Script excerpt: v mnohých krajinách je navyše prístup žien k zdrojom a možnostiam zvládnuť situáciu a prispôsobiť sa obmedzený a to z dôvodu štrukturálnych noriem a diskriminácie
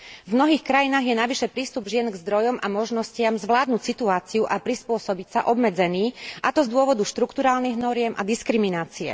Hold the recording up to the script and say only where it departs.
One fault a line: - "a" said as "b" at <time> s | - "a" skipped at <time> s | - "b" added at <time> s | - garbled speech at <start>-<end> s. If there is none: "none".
none